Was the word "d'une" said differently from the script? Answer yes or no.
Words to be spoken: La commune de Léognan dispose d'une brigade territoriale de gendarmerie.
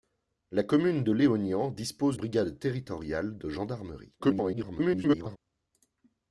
yes